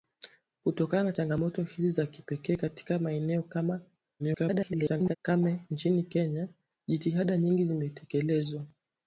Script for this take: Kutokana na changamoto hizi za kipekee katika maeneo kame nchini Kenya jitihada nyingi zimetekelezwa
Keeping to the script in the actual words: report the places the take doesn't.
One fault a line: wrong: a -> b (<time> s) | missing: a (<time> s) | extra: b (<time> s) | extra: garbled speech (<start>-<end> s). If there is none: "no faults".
extra: garbled speech (4.2-5.2 s)